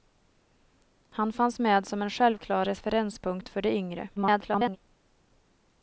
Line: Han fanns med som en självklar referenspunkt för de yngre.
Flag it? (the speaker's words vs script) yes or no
yes